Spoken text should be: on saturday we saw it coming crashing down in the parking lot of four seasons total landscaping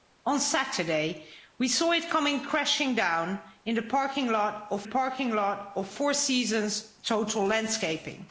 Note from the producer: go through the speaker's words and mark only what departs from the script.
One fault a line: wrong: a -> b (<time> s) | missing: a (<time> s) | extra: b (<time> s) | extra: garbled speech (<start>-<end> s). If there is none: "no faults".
extra: parking lot of (4.8 s)